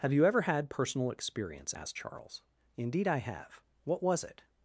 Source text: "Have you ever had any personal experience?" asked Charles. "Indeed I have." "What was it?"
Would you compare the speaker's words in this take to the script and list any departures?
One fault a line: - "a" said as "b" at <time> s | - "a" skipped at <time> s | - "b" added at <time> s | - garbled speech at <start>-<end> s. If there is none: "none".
- "any" skipped at 0.7 s